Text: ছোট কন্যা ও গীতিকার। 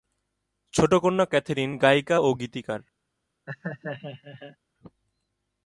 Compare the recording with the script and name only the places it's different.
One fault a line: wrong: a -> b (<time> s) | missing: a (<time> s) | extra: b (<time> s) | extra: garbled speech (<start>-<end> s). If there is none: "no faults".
extra: ক্যাথরিন গায়িকা (1.3 s)